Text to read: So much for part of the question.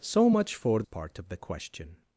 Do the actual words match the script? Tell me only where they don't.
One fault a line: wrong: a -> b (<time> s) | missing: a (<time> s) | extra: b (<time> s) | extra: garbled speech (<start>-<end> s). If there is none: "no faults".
no faults